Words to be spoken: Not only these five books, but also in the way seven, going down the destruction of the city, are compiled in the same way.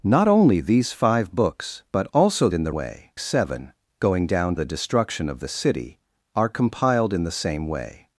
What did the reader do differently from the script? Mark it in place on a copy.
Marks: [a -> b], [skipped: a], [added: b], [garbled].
Not only these five books, but also in the way seven, going down the destruction of the city, are compiled in the same way.